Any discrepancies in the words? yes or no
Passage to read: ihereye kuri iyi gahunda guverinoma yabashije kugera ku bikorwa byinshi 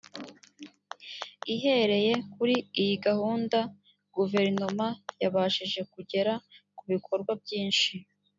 no